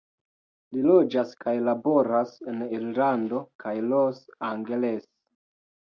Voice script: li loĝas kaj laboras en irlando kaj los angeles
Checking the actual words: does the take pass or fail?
pass